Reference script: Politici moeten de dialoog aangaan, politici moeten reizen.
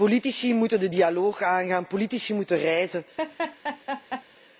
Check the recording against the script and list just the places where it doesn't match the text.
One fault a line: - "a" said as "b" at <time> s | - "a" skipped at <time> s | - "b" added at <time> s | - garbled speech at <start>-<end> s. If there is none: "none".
none